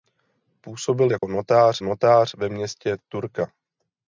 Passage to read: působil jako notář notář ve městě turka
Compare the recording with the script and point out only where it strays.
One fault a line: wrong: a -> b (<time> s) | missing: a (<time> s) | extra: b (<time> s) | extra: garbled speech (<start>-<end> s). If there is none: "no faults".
no faults